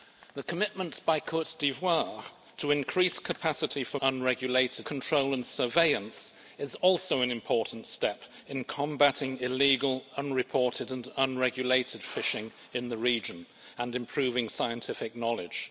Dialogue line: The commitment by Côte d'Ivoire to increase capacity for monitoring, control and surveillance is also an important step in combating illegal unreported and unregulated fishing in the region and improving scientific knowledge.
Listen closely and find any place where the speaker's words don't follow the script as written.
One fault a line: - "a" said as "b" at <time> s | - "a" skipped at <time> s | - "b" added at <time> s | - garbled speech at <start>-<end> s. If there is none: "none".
- "monitoring" said as "unregulated" at 4.0 s